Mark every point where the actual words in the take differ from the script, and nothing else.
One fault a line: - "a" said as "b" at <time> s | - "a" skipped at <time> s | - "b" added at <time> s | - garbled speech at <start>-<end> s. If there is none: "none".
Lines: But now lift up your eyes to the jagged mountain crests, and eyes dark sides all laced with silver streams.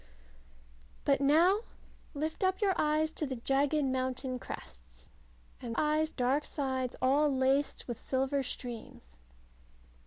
none